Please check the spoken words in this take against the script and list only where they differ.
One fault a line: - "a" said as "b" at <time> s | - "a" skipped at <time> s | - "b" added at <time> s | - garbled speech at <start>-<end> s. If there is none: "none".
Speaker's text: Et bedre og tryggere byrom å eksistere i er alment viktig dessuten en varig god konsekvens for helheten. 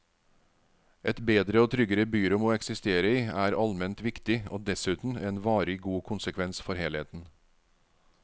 - "og" added at 4.5 s